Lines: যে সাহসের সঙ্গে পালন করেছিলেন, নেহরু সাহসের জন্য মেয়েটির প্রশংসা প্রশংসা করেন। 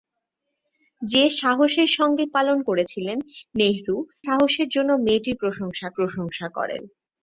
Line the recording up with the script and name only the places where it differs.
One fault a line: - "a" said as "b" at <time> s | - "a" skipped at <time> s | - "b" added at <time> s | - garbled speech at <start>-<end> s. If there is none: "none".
none